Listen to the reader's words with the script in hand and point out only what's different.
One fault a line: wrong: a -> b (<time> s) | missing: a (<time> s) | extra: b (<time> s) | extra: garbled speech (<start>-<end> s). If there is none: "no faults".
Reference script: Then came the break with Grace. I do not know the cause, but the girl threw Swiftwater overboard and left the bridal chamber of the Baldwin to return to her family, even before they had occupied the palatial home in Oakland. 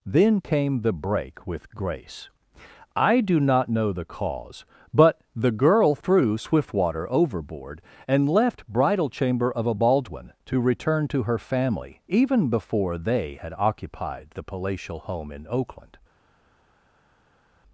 missing: the (8.7 s)
wrong: the -> a (9.7 s)